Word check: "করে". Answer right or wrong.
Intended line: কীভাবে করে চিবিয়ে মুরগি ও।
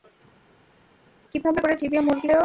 right